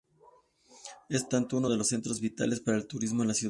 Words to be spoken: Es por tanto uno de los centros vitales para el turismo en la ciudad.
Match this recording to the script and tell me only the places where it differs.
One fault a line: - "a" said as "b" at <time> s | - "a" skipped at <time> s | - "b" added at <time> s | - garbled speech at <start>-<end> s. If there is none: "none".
- "por" skipped at 1.2 s